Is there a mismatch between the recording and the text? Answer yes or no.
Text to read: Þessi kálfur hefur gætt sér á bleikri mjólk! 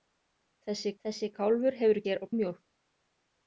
yes